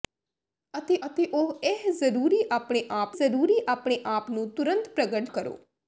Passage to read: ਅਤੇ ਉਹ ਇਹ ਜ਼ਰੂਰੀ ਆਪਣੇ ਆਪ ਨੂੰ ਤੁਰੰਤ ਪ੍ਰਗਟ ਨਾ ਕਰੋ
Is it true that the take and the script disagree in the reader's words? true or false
true